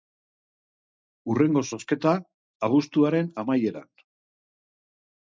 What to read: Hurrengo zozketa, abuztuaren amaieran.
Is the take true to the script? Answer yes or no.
yes